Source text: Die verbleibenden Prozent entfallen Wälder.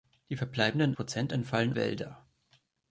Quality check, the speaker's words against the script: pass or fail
pass